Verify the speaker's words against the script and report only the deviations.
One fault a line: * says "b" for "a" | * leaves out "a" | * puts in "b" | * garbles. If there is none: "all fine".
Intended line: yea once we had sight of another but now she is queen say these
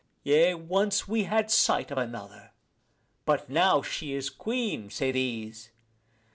all fine